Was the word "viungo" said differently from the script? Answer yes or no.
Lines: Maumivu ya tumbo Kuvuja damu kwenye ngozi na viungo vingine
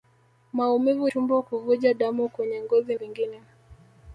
yes